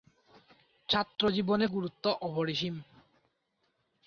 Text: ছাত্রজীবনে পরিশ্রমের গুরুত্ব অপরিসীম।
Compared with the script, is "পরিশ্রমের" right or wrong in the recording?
wrong